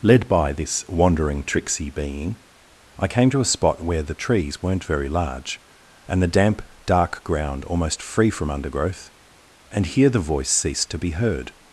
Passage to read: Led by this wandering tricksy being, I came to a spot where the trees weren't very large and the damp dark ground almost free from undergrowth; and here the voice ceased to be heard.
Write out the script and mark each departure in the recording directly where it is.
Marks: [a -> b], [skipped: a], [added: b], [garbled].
Led by this wandering tricksy being, I came to a spot where the trees weren't very large and the damp dark ground almost free from undergrowth; and here the voice ceased to be heard.